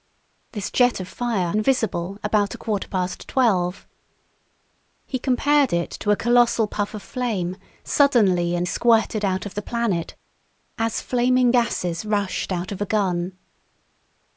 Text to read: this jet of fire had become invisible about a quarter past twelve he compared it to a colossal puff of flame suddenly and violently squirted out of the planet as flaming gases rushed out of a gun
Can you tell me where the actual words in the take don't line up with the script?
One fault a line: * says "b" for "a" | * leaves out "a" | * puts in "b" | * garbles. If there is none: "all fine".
* leaves out "had become"
* leaves out "violently"